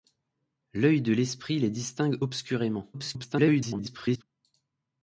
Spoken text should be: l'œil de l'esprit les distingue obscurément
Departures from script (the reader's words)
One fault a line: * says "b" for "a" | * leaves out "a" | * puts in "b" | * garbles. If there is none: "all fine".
* garbles